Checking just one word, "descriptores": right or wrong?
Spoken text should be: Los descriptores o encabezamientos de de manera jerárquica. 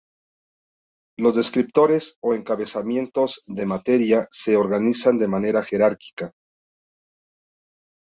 right